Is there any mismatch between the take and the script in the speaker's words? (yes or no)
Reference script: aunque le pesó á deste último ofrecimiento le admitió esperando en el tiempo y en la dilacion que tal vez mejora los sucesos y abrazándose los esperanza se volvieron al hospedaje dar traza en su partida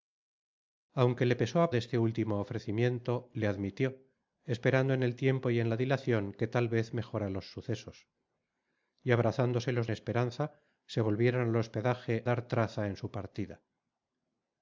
no